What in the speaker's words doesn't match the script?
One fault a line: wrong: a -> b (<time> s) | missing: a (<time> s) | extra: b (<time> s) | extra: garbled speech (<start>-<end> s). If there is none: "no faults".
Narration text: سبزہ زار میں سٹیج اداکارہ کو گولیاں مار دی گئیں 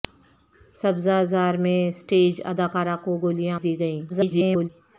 missing: مار (3.6 s)
extra: garbled speech (4.1-4.7 s)